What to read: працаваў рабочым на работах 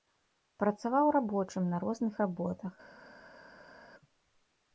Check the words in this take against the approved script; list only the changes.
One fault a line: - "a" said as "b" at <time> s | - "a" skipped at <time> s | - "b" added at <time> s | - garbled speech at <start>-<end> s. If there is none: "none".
- "розных" added at 1.9 s